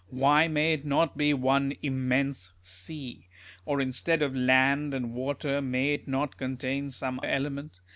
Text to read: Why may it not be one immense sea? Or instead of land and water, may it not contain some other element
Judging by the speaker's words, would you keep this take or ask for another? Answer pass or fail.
fail